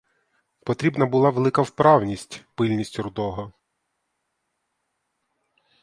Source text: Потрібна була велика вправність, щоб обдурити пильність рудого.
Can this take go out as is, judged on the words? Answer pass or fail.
fail